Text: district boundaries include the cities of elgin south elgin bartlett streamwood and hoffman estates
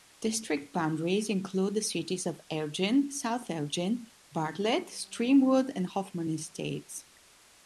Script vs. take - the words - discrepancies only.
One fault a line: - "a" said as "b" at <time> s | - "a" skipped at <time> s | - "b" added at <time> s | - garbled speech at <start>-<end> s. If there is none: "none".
none